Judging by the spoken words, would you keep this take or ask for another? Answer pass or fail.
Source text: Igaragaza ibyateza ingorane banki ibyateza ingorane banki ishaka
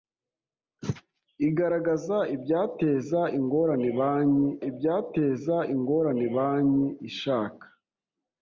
pass